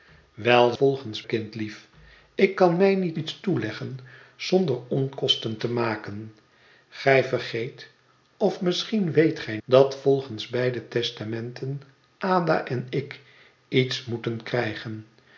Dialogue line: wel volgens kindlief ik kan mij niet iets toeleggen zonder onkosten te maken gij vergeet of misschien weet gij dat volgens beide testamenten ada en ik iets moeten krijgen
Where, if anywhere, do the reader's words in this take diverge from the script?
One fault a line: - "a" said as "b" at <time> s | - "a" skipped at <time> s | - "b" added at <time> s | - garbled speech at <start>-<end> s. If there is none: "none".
none